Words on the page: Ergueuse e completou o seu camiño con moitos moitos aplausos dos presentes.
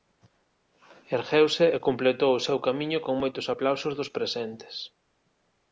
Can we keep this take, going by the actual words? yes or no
no